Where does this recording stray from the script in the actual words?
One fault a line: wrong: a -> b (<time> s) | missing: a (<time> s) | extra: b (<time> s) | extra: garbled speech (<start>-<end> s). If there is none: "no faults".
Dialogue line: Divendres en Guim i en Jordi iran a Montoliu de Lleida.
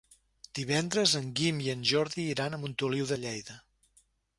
no faults